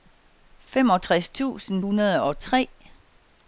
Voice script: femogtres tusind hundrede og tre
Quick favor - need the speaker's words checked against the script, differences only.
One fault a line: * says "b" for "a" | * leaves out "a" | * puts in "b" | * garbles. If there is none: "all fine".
all fine